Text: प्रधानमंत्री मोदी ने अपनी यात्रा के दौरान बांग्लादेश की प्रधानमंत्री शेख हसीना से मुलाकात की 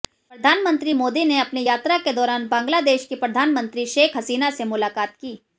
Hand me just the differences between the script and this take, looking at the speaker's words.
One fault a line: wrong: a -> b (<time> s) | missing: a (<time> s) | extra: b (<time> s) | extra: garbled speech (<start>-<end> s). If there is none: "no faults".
no faults